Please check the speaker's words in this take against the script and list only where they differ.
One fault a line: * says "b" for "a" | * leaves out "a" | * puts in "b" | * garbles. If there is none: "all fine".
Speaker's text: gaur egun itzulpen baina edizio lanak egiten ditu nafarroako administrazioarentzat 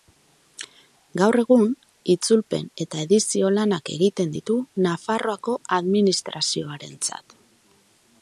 * says "eta" for "baina"